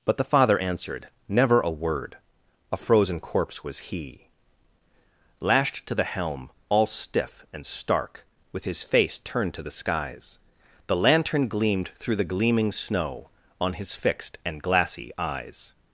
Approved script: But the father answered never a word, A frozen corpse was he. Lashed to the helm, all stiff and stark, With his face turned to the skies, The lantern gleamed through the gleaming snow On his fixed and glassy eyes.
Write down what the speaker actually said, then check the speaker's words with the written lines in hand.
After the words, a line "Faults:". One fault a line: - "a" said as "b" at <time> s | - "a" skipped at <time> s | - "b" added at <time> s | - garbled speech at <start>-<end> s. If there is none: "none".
But the father answered never a word, A frozen corpse was he. Lashed to the helm, all stiff and stark, With his face turned to the skies, The lantern gleamed through the gleaming snow On his fixed and glassy eyes.
Faults:
none